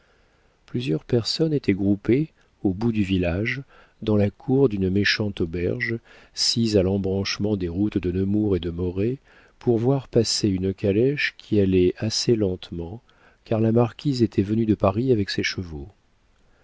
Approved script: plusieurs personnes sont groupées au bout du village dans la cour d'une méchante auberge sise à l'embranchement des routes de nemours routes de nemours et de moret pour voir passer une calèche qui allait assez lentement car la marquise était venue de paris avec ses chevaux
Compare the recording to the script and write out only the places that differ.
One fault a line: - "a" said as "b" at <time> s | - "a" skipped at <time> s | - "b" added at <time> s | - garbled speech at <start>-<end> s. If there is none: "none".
- "sont" said as "étaient" at 1.5 s
- "routes de nemours" skipped at 8.6 s